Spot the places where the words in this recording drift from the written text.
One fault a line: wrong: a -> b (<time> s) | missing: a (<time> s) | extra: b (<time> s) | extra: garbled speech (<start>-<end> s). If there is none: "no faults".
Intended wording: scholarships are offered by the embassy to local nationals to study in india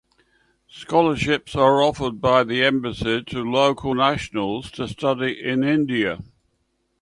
no faults